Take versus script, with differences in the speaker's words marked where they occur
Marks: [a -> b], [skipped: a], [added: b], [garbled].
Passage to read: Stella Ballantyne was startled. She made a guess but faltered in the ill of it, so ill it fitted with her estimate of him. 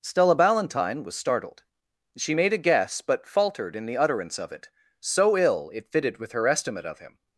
Stella Ballantyne was startled. She made a guess but faltered in the [ill -> utterance] of it, so ill it fitted with her estimate of him.